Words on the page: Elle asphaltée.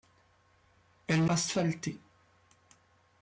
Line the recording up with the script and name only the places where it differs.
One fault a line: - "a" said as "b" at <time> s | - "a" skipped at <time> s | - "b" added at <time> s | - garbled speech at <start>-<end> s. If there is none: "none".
none